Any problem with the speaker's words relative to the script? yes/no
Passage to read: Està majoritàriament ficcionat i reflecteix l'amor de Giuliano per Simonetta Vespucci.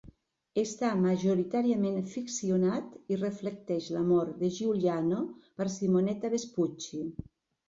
no